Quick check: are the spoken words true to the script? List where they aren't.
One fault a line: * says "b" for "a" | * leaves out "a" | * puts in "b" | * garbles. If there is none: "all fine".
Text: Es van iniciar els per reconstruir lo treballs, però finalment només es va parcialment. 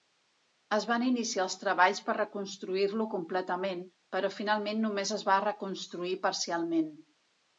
* puts in "treballs"
* says "completament" for "treballs"
* puts in "reconstruir"